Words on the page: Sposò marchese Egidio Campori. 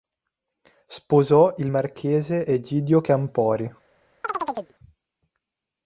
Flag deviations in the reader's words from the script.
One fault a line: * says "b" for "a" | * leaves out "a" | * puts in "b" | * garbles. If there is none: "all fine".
* puts in "il"